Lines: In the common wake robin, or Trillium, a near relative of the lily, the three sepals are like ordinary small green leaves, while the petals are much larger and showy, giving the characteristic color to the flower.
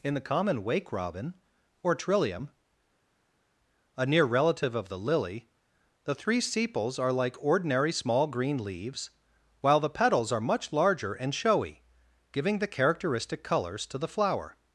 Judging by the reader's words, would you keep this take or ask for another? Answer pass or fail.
fail